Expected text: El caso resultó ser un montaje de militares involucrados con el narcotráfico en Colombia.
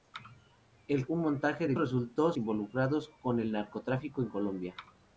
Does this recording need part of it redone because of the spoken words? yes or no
yes